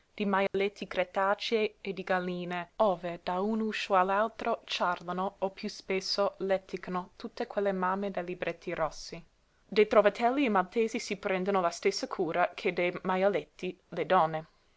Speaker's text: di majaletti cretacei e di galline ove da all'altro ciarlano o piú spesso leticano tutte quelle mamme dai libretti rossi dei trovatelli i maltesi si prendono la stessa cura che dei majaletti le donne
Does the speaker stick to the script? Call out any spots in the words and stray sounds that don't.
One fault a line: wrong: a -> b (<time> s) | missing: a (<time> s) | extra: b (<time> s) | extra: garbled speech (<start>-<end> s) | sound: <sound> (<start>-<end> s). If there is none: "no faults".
sound: dropout (0.5-0.5 s)
extra: un uscio (3.4 s)